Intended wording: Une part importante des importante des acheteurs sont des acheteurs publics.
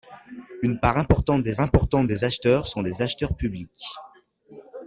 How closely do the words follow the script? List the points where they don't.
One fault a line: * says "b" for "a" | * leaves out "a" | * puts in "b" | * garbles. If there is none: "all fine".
all fine